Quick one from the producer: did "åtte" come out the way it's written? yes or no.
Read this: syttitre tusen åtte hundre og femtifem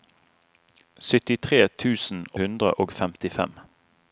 no